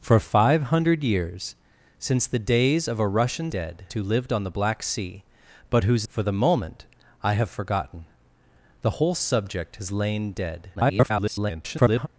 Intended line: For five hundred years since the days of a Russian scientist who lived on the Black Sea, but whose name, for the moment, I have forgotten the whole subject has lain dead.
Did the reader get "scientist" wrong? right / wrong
wrong